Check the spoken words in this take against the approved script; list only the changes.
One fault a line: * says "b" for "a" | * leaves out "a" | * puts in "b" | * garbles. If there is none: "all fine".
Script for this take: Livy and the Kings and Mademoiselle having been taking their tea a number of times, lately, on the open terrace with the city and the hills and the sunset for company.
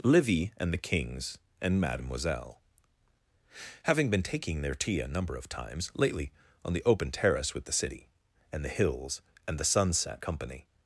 * leaves out "for"